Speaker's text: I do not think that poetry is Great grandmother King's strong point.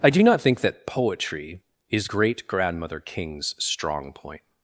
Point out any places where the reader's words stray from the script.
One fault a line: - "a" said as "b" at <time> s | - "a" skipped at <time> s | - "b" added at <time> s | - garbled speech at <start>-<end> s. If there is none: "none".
none